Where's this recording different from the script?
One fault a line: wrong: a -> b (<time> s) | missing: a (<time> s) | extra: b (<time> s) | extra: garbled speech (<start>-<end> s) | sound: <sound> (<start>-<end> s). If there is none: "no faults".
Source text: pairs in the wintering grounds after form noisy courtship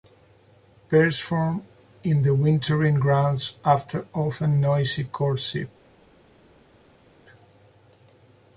extra: form (1.2 s)
wrong: form -> often (4.2 s)